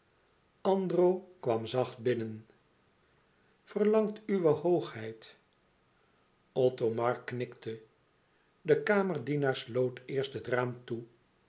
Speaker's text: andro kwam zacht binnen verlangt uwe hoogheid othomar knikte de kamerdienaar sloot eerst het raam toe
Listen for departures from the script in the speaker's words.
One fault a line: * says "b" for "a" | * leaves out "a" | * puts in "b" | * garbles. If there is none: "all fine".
all fine